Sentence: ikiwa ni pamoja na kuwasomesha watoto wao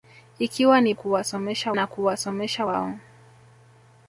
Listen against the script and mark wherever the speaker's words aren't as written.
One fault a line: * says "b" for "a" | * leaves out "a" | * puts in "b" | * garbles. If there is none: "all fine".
* says "kuwasomesha" for "pamoja"
* leaves out "watoto"